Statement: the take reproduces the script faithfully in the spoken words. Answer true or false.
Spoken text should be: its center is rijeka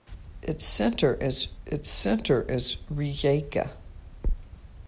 false